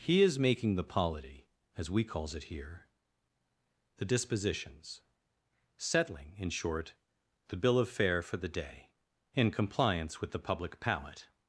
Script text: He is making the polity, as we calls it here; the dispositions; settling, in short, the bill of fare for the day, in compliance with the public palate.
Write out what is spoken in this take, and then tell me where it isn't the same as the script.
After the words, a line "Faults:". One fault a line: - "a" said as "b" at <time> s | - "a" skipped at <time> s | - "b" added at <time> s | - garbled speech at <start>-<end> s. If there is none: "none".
He is making the polity, as we calls it here; the dispositions; settling, in short, the bill of fare for the day, in compliance with the public palate.
Faults:
none